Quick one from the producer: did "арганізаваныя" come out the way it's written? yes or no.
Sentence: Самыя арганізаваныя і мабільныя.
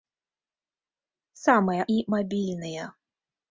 no